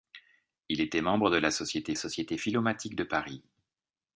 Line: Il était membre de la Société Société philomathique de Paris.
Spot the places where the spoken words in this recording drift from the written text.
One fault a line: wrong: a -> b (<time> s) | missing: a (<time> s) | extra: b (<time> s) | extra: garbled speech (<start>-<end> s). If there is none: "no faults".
no faults